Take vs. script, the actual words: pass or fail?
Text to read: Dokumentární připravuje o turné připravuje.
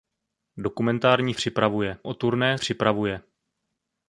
pass